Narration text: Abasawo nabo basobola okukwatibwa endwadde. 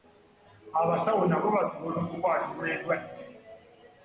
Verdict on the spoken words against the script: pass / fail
pass